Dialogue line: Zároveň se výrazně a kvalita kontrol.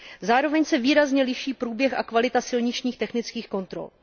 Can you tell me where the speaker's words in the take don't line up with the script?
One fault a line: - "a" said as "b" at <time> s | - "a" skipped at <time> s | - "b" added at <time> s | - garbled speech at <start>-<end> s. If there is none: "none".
- "liší průběh" added at 1.2 s
- "silničních technických" added at 2.4 s